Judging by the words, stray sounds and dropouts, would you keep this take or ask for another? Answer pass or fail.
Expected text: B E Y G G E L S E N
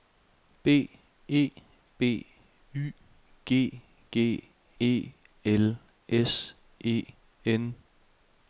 fail